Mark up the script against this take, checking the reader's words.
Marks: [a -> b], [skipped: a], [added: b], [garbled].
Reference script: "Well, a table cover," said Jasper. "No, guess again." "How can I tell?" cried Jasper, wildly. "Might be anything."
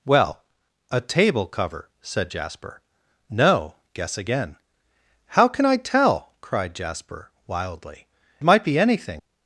"Well, a table cover," said Jasper. "No, guess again." "How can I tell?" cried Jasper, wildly. "Might be anything."